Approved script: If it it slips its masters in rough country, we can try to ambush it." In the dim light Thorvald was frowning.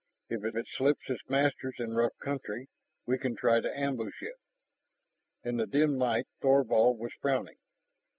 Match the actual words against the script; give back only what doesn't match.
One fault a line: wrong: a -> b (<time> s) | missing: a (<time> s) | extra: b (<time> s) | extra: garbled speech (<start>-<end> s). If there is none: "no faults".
no faults